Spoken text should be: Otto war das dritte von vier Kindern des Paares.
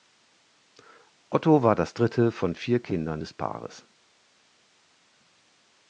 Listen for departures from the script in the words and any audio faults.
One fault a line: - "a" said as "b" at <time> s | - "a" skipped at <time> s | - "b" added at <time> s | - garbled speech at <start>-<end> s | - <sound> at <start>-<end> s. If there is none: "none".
none